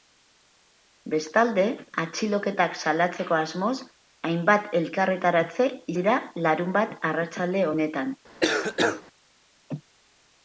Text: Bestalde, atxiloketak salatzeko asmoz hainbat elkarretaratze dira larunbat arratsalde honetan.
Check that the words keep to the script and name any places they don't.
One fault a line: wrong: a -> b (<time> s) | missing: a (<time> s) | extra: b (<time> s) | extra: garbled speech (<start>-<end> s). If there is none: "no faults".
no faults